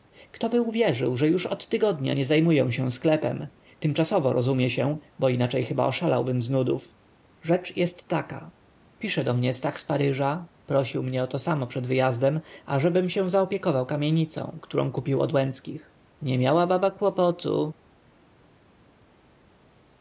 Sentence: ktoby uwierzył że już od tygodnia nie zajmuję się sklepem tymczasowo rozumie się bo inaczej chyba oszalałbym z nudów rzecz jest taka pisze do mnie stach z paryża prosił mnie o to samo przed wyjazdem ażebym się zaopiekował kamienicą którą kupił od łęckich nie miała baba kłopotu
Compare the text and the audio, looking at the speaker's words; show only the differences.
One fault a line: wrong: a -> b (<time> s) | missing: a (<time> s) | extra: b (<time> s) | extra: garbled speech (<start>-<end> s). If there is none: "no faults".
no faults